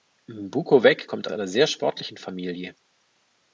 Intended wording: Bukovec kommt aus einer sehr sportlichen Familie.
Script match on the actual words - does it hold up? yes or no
no